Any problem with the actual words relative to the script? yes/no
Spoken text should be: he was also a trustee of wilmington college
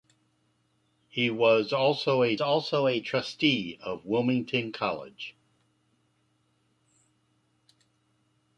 yes